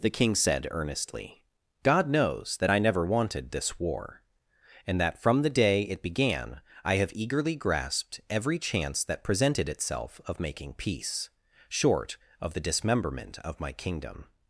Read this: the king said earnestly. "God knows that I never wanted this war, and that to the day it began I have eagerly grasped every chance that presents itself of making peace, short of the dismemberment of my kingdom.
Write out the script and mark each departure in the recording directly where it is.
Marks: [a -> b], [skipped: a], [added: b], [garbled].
the king said earnestly. "God knows that I never wanted this war, and that [to -> from] the day it began I have eagerly grasped every chance that [presents -> presented] itself of making peace, short of the dismemberment of my kingdom.